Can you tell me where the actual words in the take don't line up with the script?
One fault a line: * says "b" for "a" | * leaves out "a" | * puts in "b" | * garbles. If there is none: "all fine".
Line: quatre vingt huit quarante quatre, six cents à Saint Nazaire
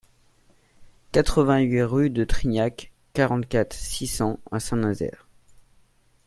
* puts in "rue de Trignac"